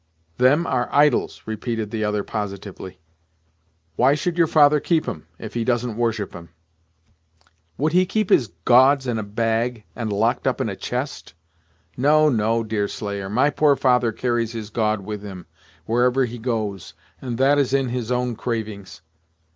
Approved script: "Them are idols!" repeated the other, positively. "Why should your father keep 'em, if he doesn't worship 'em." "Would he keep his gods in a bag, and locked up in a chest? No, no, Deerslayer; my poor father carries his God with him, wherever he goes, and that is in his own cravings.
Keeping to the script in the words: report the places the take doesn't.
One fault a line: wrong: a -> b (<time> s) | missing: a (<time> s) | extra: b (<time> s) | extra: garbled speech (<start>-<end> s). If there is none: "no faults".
no faults